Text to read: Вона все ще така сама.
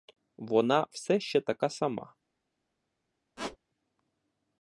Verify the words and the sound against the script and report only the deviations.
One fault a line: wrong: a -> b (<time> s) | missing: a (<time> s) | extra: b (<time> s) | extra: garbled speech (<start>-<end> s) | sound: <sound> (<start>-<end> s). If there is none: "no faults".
sound: squeak (3.4-3.6 s)